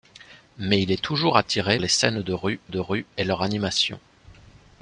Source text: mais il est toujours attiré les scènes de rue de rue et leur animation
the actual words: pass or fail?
pass